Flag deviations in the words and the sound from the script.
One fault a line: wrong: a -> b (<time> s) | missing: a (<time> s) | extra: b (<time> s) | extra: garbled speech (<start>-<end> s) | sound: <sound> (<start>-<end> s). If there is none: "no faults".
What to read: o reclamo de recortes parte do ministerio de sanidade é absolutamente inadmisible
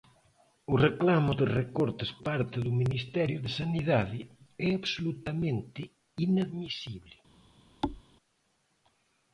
sound: thud (7.8-8.0 s)